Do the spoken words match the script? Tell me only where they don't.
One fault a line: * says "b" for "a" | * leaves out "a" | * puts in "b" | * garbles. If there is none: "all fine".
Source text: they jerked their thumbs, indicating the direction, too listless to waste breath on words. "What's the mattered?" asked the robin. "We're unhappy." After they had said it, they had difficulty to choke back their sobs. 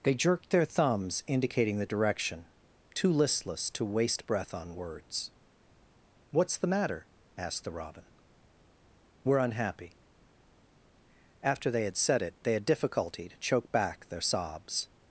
* says "matter" for "mattered"